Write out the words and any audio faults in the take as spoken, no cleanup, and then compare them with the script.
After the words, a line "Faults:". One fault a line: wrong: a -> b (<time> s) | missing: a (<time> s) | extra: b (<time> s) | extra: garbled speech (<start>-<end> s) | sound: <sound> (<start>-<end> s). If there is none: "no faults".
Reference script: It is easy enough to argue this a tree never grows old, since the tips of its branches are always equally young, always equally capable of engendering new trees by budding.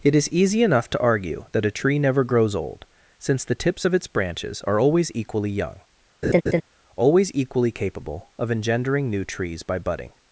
It is easy enough to argue that a tree never grows old, since the tips of its branches are always equally young, always equally capable of engendering new trees by budding.
Faults:
wrong: this -> that (1.5 s)
sound: laugh (6.2-6.6 s)